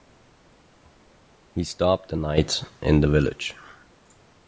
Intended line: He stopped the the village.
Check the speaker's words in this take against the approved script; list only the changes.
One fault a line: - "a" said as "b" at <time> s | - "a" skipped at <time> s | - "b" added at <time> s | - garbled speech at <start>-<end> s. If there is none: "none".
- "night in" added at 2.1 s